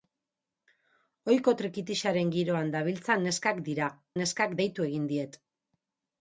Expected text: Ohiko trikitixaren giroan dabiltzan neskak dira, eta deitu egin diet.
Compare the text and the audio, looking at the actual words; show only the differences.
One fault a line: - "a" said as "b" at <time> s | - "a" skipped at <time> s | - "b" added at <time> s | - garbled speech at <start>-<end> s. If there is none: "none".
- "eta" said as "neskak" at 4.2 s